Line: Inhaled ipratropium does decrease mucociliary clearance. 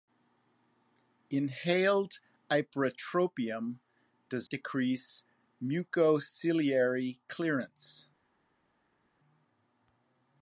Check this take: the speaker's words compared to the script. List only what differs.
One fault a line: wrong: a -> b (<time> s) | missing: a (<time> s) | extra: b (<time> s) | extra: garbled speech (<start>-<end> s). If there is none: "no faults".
no faults